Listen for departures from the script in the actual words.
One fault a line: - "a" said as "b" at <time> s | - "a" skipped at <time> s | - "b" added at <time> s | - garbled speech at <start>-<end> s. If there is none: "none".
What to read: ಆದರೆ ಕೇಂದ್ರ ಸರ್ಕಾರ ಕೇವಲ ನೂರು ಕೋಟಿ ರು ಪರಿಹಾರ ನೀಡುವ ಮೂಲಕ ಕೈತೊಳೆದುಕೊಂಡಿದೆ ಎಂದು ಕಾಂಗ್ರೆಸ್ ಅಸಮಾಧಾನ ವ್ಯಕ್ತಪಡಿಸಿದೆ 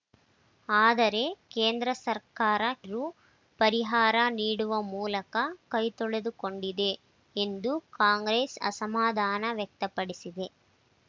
- "ಕೇವಲ ನೂರು ಕೋಟಿ" skipped at 2.6 s